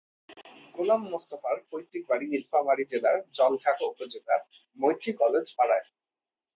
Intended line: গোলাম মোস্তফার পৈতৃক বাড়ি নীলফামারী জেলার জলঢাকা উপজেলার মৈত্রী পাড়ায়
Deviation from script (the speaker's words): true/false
true